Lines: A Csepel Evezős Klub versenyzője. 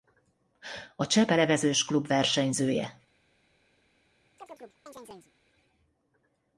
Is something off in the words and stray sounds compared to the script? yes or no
yes